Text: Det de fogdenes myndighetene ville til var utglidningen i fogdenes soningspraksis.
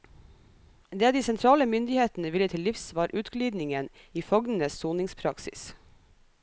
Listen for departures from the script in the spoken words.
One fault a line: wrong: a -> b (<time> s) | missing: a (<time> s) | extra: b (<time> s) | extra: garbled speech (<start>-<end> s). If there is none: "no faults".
wrong: fogdenes -> sentrale (1.2 s)
extra: livs (2.7 s)